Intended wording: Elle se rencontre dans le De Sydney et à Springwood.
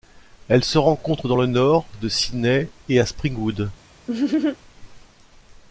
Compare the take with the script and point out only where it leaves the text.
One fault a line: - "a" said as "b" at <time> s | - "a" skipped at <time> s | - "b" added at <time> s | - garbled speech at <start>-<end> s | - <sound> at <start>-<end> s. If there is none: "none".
- "Nord" added at 1.5 s
- laugh at 4.1-4.6 s